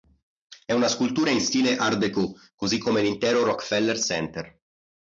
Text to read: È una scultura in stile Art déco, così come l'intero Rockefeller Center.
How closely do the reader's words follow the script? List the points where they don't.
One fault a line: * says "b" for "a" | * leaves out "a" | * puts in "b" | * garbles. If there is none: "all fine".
all fine